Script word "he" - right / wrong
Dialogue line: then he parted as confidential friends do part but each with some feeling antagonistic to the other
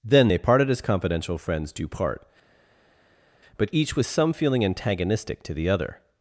wrong